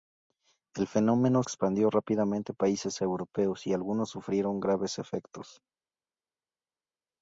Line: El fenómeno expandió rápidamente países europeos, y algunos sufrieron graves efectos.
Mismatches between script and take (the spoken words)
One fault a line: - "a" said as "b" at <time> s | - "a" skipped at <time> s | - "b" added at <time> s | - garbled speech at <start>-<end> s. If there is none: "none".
none